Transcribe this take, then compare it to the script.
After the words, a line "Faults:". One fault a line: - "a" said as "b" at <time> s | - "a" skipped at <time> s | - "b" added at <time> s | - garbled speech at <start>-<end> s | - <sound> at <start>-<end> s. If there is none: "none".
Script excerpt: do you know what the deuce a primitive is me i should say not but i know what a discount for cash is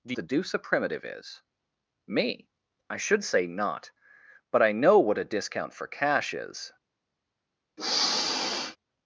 do the deuce a primitive is me i should say not but i know what a discount for cash is
Faults:
- "you know what" skipped at 0.1 s
- sniff at 7.8-8.8 s